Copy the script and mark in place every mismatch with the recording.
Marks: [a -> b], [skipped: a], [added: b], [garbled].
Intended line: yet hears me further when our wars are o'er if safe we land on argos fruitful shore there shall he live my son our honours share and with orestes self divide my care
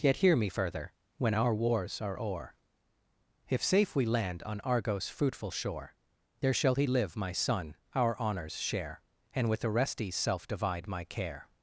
yet [hears -> hear] me further when our wars are o'er if safe we land on argos fruitful shore there shall he live my son our honours share and with orestes self divide my care